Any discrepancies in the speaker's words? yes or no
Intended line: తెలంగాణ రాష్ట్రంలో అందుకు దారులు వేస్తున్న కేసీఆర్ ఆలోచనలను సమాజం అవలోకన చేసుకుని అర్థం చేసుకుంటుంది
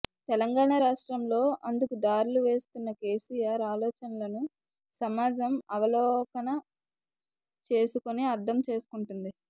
no